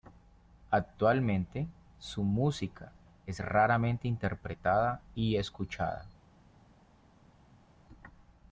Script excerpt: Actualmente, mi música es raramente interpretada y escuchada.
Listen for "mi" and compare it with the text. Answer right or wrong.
wrong